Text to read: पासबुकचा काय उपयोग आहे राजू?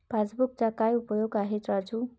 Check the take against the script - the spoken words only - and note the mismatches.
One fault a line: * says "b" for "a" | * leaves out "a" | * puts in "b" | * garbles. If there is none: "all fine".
all fine